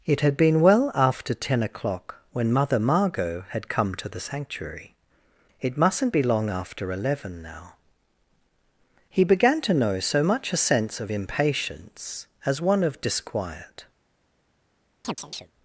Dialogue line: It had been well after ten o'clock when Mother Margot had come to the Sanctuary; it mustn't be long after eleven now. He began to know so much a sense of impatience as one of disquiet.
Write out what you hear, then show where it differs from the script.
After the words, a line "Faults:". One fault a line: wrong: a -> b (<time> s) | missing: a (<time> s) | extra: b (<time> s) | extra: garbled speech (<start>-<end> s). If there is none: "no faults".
It had been well after ten o'clock when Mother Margot had come to the Sanctuary; it mustn't be long after eleven now. He began to know so much a sense of impatience as one of disquiet.
Faults:
no faults